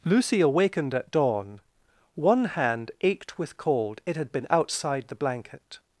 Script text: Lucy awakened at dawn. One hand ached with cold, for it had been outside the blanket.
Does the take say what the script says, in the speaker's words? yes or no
no